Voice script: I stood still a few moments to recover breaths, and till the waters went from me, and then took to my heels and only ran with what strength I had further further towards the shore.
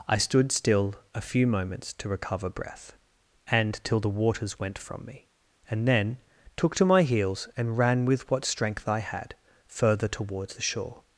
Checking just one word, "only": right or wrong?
wrong